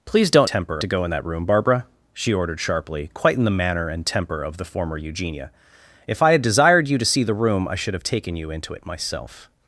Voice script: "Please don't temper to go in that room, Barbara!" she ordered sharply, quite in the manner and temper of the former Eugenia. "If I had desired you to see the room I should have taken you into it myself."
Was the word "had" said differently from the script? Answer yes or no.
no